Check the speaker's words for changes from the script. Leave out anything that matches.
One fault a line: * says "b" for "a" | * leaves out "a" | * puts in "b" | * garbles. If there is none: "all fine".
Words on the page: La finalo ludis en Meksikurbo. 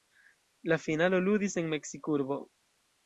all fine